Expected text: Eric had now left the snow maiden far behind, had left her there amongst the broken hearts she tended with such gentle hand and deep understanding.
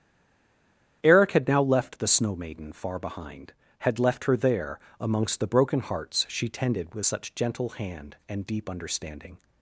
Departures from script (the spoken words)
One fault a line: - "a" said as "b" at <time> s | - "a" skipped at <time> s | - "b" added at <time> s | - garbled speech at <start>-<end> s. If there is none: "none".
none